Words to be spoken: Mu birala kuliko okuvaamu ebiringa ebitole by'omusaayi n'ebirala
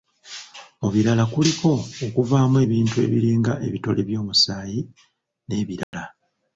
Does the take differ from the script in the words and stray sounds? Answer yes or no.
yes